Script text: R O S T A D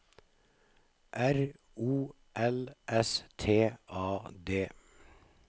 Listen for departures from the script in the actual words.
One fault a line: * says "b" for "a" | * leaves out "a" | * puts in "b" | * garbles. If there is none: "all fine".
* puts in "L"